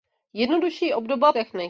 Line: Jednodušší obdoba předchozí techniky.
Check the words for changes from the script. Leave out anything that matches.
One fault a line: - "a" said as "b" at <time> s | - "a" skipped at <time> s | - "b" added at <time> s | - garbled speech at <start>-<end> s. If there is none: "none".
- "předchozí" skipped at 1.3 s